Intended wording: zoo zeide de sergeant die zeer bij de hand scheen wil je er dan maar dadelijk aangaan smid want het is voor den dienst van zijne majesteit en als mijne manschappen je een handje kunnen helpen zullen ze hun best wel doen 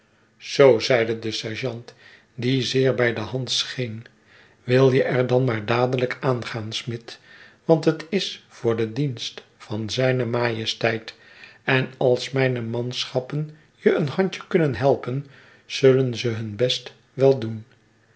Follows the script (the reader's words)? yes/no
yes